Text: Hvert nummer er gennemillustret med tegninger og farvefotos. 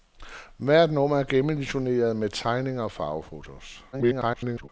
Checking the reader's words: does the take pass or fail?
fail